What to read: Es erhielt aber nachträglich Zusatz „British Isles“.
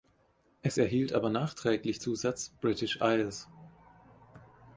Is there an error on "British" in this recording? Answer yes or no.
no